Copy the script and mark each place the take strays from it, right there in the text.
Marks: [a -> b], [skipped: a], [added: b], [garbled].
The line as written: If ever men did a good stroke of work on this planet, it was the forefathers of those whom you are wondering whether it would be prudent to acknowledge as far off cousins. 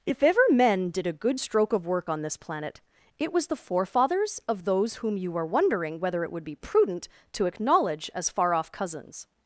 If ever men did a good stroke of work on this planet, it was the forefathers of those whom you are wondering whether it would be prudent to acknowledge as far off cousins.